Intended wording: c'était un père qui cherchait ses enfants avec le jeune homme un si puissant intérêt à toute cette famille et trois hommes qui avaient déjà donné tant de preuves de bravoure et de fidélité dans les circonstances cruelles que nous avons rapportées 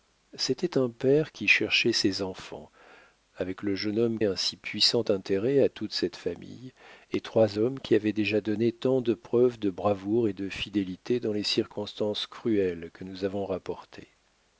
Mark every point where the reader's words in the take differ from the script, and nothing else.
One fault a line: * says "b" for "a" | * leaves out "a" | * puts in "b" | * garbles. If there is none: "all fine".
all fine